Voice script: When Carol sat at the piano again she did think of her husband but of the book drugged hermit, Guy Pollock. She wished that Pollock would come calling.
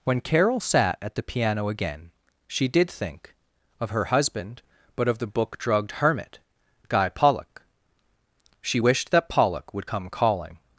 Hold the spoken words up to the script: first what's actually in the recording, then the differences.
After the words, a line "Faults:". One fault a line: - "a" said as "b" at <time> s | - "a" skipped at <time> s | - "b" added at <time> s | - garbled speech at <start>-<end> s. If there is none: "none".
When Carol sat at the piano again she did think of her husband but of the book drugged hermit, Guy Pollock. She wished that Pollock would come calling.
Faults:
none